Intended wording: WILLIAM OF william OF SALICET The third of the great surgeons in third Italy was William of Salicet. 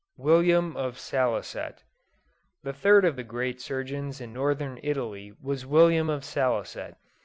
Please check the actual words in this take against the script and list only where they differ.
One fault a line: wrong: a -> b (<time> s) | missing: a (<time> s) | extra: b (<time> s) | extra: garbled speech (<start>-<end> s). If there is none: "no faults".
missing: william OF (1.0 s)
wrong: third -> northern (4.3 s)